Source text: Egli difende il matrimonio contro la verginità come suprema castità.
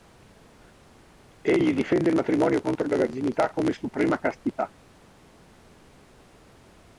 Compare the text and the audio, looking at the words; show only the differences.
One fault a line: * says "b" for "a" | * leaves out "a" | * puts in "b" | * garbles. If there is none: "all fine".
all fine